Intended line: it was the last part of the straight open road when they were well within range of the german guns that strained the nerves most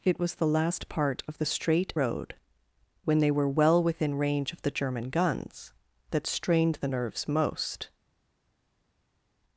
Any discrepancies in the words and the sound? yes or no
yes